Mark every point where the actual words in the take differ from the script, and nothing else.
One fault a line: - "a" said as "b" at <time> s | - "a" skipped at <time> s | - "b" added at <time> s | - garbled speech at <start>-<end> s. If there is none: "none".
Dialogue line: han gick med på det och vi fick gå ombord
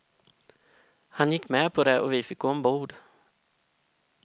none